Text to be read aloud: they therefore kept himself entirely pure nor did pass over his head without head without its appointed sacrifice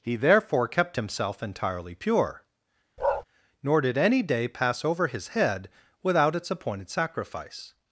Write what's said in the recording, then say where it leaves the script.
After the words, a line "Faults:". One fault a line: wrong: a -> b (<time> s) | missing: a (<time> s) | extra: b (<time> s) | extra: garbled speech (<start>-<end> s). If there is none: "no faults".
he therefore kept himself entirely pure nor did any day pass over his head without its appointed sacrifice
Faults:
wrong: they -> he (0.0 s)
extra: any day (4.0 s)
missing: head without (6.3 s)